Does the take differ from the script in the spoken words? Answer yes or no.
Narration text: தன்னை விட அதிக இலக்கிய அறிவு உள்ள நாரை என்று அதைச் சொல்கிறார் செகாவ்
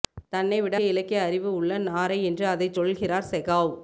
yes